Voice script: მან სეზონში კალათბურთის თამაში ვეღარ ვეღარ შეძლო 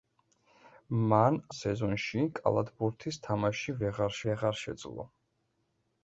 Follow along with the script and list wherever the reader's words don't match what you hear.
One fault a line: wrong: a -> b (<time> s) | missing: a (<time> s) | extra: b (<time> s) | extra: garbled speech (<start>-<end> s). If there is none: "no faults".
no faults